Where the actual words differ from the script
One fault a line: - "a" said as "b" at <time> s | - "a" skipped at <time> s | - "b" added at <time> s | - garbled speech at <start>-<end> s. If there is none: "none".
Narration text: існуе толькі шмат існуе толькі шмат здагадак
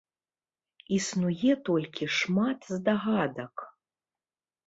- "існуе толькі шмат" skipped at 2.6 s